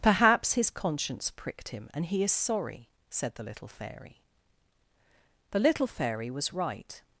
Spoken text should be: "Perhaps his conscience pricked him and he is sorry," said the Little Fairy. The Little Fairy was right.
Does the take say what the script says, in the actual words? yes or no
yes